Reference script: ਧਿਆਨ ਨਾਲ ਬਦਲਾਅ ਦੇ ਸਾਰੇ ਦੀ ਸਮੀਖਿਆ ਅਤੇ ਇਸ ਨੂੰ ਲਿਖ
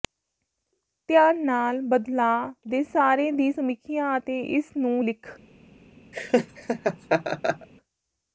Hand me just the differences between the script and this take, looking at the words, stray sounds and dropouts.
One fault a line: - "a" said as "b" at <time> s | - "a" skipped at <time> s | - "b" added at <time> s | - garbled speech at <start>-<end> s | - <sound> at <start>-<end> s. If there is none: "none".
- laugh at 6.1-7.7 s